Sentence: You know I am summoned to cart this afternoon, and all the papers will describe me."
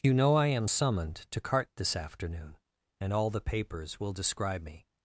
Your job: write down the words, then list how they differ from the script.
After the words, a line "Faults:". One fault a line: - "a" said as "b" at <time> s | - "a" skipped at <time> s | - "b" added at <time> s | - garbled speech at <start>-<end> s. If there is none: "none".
You know I am summoned to cart this afternoon, and all the papers will describe me."
Faults:
none